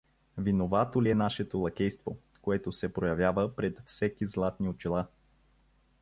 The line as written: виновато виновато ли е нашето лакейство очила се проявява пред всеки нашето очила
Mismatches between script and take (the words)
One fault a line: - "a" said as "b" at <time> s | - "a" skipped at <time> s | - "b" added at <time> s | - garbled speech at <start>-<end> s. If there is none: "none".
- "виновато" skipped at 1.0 s
- "очила" said as "което" at 2.4 s
- "нашето" said as "златни" at 4.3 s